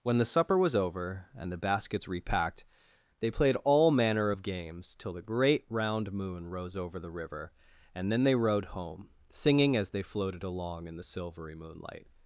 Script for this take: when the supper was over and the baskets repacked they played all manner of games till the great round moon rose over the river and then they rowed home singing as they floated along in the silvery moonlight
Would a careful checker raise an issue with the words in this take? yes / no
no